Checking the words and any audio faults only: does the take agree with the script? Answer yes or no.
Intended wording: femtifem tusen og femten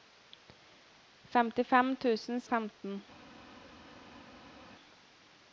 yes